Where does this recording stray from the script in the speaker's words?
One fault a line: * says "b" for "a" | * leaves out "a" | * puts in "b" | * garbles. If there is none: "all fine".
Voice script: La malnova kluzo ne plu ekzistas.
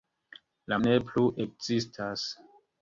* leaves out "malnova kluzo"